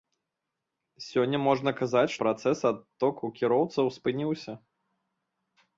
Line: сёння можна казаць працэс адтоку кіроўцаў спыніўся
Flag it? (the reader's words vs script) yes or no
no